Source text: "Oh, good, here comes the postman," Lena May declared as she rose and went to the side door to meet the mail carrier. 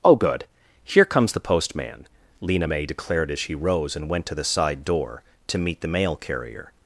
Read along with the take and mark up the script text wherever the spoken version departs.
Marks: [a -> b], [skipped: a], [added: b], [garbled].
"Oh, good, here comes the postman," Lena May declared as she rose and went to the side door to meet the mail carrier.